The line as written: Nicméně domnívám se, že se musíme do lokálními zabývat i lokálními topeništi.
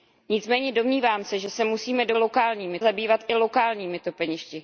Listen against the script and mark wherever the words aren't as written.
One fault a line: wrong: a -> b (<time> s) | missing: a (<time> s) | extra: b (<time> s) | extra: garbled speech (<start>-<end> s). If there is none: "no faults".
no faults